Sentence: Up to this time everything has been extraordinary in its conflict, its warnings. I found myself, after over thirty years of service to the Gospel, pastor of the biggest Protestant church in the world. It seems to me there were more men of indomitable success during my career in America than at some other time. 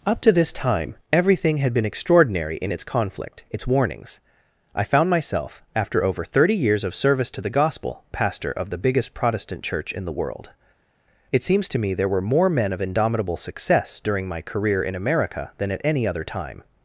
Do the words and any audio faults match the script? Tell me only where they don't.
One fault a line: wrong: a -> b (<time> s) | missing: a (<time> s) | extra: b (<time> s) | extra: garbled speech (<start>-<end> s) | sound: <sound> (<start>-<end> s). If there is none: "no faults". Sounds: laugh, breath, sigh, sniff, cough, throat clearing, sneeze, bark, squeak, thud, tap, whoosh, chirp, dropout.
wrong: has -> had (1.6 s)
wrong: some -> any (15.9 s)